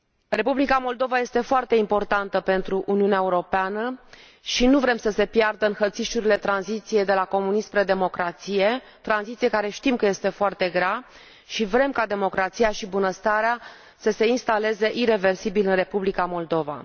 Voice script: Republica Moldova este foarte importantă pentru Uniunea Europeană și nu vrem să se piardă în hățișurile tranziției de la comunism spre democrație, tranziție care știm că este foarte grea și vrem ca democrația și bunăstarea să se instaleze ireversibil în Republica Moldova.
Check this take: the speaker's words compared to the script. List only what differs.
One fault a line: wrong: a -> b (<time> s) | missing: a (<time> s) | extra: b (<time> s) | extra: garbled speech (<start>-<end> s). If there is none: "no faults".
no faults